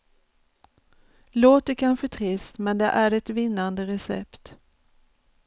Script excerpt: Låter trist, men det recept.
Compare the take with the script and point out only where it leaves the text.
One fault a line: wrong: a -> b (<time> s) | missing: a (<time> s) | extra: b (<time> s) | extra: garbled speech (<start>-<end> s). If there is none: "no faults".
extra: kanske (1.7 s)
extra: är ett vinnande (2.9 s)